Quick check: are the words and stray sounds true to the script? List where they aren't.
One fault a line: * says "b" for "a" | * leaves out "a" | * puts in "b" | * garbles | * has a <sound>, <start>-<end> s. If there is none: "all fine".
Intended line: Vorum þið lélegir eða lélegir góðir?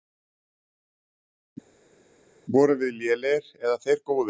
* says "við" for "þið"
* says "þeir" for "lélegir"